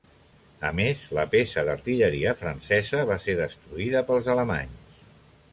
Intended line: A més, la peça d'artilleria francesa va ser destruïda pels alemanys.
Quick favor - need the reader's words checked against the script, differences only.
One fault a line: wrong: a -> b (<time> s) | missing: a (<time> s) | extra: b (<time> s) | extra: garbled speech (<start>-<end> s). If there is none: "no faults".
no faults